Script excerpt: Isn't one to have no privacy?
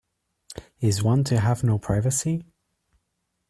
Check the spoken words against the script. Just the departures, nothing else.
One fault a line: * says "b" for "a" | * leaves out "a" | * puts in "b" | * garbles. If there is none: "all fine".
* says "Is" for "Isn't"